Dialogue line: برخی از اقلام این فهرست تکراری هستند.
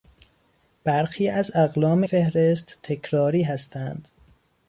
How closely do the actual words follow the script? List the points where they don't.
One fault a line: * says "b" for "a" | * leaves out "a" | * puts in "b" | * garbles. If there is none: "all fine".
* leaves out "این"